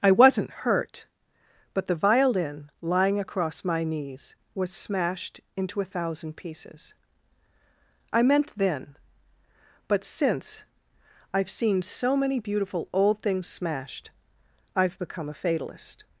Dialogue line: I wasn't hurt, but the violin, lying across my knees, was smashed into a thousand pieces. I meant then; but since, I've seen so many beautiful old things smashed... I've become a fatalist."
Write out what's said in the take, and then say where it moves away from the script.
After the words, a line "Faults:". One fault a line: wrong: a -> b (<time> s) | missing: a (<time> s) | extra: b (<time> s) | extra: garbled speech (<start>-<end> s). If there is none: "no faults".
I wasn't hurt, but the violin, lying across my knees, was smashed into a thousand pieces. I meant then; but since, I've seen so many beautiful old things smashed... I've become a fatalist."
Faults:
no faults